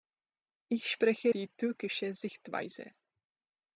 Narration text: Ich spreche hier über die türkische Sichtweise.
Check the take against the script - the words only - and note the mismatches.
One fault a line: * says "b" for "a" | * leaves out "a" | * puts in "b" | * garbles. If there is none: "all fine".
* leaves out "hier über"